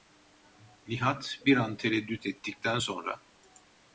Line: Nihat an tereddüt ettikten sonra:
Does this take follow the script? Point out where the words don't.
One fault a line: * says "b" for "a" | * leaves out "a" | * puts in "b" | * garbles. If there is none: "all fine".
* puts in "bir"